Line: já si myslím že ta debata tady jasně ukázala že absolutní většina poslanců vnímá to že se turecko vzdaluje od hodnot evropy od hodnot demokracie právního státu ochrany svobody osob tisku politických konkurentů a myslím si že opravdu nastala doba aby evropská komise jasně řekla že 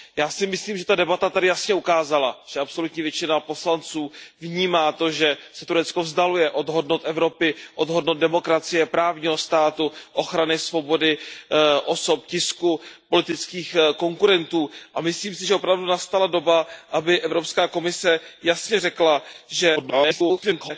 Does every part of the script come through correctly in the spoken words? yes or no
no